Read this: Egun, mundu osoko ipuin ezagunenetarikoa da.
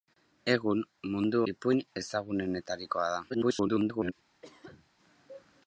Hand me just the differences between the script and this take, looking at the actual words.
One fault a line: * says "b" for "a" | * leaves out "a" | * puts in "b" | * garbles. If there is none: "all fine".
* leaves out "osoko"
* garbles